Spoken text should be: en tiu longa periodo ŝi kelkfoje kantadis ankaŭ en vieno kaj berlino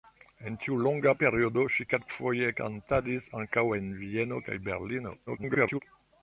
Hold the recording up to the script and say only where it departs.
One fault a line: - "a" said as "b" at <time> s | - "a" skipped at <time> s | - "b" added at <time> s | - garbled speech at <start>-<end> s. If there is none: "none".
- garbled speech at 5.3-5.8 s